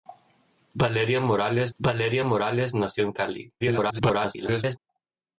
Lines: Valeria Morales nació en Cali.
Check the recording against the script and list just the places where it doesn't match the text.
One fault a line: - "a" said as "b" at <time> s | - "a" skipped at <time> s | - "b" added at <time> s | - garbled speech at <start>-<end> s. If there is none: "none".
- "valeria Morales" added at 1.8 s
- garbled speech at 3.6-4.8 s